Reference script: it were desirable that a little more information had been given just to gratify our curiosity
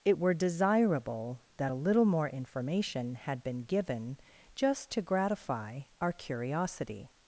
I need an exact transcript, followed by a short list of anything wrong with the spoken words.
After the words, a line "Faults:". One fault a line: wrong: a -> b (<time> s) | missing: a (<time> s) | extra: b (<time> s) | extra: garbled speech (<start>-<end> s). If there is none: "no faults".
it were desirable that a little more information had been given just to gratify our curiosity
Faults:
no faults